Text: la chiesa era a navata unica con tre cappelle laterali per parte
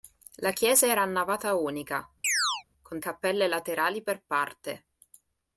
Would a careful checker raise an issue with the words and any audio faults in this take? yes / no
yes